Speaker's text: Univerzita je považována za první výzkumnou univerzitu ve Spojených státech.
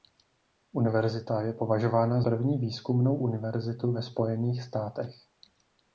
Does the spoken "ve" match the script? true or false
true